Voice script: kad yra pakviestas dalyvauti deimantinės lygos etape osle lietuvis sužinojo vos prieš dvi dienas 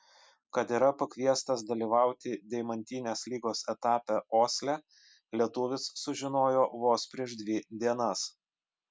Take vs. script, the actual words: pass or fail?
pass